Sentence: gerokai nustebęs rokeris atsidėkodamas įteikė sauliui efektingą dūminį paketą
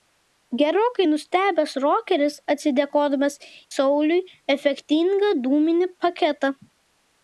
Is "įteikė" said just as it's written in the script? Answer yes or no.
no